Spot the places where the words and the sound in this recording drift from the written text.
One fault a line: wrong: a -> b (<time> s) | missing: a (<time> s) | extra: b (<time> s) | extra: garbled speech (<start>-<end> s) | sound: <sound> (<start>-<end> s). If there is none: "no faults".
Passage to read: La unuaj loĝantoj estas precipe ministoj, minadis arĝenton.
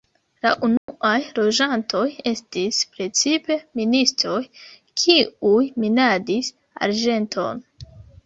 sound: dropout (0.8-0.9 s)
wrong: estas -> estis (2.3 s)
extra: kiuj (5.0 s)